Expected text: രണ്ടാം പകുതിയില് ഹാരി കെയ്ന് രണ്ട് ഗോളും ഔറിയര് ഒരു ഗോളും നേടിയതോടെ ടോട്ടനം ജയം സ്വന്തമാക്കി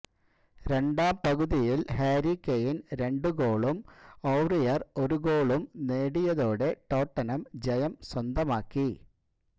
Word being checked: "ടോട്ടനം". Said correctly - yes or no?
yes